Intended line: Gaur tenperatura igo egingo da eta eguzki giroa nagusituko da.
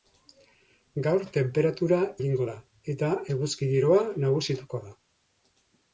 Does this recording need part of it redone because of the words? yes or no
yes